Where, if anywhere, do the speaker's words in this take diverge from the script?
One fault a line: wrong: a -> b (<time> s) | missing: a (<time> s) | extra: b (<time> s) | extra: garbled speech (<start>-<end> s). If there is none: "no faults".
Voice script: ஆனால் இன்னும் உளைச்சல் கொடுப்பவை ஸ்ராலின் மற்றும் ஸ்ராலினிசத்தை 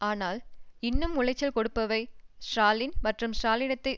no faults